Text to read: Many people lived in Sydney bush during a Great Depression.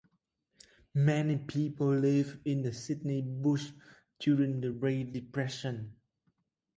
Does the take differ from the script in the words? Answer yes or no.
yes